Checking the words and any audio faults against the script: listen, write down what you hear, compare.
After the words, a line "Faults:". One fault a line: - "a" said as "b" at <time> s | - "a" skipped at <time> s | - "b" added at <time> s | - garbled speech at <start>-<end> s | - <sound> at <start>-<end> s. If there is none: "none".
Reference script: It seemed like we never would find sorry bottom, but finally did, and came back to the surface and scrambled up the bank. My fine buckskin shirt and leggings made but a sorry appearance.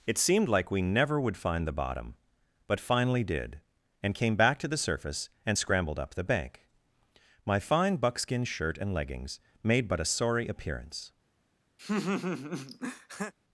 It seemed like we never would find the bottom, but finally did, and came back to the surface and scrambled up the bank. My fine buckskin shirt and leggings made but a sorry appearance.
Faults:
- "sorry" said as "the" at 1.7 s
- laugh at 11.8-13.3 s